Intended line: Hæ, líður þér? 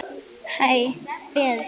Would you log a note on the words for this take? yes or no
no